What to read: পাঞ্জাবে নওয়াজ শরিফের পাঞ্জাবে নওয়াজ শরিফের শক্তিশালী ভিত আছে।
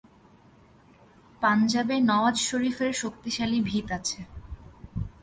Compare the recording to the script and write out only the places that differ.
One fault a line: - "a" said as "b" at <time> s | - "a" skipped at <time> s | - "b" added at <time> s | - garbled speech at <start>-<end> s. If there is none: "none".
- "পাঞ্জাবে নওয়াজ শরিফের" skipped at 2.9 s